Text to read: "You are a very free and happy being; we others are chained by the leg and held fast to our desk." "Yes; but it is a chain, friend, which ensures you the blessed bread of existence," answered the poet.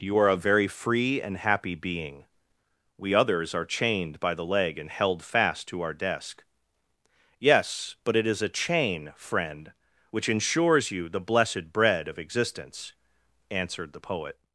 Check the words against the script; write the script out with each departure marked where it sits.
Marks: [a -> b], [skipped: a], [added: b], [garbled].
"You are a very free and happy being; we others are chained by the leg and held fast to our desk." "Yes; but it is a chain, friend, which ensures you the blessed bread of existence," answered the poet.